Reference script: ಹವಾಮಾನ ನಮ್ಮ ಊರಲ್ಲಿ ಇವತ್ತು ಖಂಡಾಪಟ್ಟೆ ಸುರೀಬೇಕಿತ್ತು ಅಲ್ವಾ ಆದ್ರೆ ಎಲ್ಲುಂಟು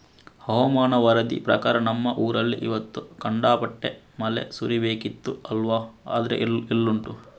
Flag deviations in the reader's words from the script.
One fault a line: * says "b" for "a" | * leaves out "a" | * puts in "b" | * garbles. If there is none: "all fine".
* puts in "ವರದಿ ಪ್ರಕಾರ"
* puts in "ಮಳೆ"